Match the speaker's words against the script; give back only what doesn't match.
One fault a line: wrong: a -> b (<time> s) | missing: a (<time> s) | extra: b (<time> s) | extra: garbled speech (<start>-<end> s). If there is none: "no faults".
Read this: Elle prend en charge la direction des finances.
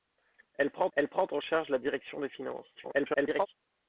extra: elle prend (0.9 s)
extra: garbled speech (2.7-3.5 s)